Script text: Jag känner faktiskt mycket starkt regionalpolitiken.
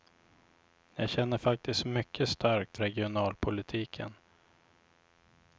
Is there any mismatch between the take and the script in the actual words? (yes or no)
no